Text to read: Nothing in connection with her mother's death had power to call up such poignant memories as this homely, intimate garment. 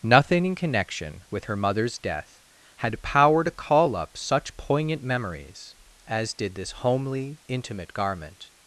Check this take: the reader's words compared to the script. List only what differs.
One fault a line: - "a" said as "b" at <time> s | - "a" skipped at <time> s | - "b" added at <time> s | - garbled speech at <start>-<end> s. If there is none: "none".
- "did" added at 6.3 s